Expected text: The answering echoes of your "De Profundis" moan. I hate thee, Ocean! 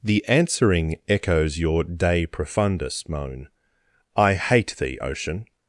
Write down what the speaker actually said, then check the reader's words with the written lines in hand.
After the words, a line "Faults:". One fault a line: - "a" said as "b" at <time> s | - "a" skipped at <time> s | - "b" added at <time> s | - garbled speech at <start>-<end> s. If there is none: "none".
The answering echoes your "De Profundis" moan. I hate thee, Ocean!
Faults:
- "of" skipped at 1.6 s